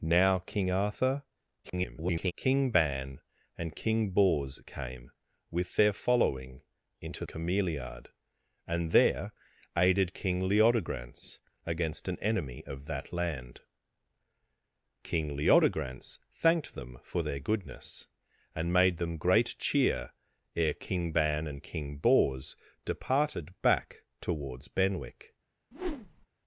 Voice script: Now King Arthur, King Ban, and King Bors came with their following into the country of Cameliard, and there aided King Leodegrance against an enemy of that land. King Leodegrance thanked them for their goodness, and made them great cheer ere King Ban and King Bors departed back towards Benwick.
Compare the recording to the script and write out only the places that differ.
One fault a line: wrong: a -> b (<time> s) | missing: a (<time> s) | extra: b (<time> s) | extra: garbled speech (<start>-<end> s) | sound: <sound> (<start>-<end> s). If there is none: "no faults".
extra: garbled speech (1.6-2.3 s)
missing: the country of (7.2 s)
sound: whoosh (25.7-26.3 s)